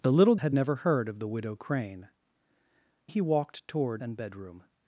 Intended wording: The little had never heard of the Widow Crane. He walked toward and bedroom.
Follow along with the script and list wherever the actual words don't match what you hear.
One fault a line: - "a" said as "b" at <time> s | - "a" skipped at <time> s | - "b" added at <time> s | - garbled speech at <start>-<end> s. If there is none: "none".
none